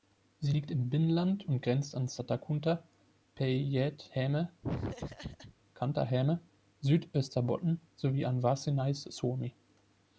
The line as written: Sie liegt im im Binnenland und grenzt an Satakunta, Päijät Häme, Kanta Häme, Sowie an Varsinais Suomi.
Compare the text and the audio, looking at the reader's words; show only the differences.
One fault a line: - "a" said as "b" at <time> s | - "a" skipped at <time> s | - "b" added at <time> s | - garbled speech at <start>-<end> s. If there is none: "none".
- "im" skipped at 0.9 s
- "Südösterbotten" added at 6.8 s